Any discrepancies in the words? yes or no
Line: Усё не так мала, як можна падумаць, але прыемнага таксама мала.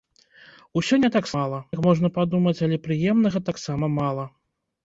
no